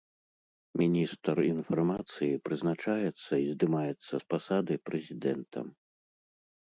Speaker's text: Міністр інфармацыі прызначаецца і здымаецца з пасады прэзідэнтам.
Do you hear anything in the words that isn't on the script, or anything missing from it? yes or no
no